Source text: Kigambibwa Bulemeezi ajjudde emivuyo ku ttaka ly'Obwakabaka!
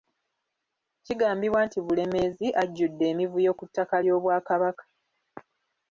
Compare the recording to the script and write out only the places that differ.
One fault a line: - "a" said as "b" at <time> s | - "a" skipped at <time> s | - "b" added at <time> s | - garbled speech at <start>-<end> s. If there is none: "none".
- "nti" added at 1.7 s